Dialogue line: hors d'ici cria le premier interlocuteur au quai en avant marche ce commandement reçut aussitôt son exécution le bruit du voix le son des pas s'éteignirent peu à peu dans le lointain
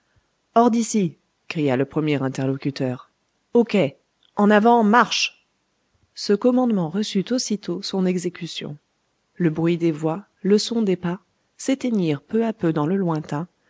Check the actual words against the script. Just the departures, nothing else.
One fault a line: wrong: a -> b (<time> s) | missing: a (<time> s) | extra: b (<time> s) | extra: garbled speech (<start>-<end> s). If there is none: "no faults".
wrong: du -> des (9.8 s)